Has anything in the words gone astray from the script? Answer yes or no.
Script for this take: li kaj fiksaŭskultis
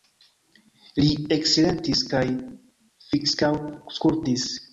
yes